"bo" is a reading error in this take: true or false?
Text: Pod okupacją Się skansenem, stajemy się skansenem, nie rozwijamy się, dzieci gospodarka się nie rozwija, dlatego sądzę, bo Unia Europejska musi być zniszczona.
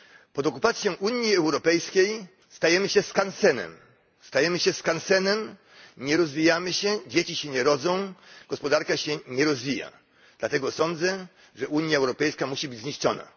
true